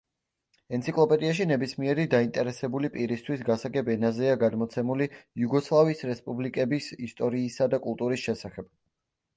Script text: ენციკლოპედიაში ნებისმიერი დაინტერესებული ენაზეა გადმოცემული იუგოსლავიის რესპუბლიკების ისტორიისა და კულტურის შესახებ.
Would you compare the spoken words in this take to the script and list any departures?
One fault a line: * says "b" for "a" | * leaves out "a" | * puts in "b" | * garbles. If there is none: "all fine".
* puts in "პირისთვის გასაგებ"